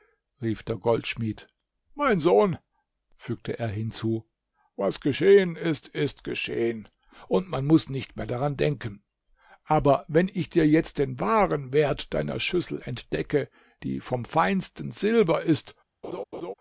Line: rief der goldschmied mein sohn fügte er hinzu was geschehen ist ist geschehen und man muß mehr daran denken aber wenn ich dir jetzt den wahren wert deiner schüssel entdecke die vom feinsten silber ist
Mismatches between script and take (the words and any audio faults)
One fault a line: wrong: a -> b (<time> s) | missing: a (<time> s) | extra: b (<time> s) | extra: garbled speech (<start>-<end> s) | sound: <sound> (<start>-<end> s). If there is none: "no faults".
extra: nicht (7.9 s)
sound: laugh (16.0-16.5 s)